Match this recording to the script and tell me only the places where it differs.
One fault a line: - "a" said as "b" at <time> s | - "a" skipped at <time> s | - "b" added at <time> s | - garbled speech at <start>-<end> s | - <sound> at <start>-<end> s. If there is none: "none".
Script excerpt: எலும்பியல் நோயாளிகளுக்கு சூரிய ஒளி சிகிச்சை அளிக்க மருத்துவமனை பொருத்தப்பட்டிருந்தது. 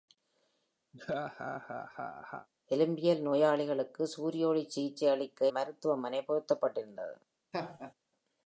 - laugh at 0.9-2.5 s
- laugh at 7.5-7.9 s